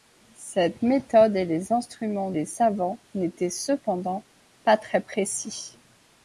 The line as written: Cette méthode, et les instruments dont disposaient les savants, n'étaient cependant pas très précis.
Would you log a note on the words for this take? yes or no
yes